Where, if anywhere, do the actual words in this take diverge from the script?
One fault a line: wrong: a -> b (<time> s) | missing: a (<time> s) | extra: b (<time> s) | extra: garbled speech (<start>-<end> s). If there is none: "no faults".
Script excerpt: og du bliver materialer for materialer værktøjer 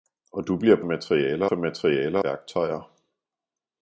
no faults